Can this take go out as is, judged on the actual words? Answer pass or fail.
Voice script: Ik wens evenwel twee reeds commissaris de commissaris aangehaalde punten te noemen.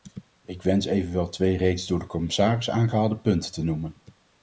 fail